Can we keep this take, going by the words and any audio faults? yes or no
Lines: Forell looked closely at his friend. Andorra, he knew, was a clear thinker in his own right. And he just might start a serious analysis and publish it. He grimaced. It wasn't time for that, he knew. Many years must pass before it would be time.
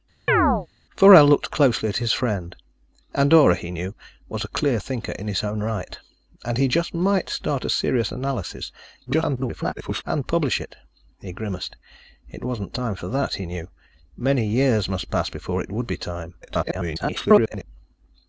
no